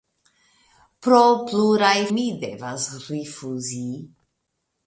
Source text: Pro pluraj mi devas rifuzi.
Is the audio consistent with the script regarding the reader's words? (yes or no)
yes